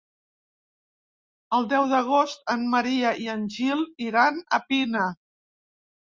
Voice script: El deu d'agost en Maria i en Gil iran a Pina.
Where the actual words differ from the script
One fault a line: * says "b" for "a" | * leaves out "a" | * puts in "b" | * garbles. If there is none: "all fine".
all fine